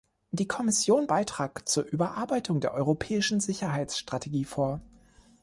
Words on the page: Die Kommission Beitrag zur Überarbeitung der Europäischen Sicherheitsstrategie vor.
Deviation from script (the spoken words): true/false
false